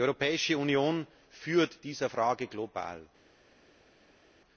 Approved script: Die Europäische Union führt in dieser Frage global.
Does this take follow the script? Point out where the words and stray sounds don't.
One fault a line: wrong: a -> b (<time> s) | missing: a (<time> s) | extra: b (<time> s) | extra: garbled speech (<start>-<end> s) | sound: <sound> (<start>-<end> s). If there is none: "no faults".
missing: in (1.8 s)